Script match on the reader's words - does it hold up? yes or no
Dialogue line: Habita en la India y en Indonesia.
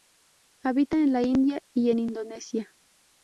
yes